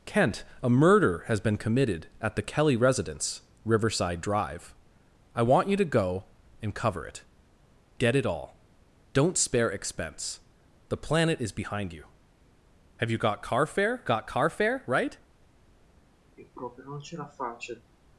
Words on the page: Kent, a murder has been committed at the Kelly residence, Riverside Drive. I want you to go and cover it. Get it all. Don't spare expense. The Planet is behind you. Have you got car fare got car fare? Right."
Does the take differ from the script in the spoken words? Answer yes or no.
no